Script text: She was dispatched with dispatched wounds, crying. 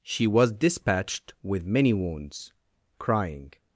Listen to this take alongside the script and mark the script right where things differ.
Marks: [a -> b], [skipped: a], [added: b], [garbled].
She was dispatched with [dispatched -> many] wounds, crying.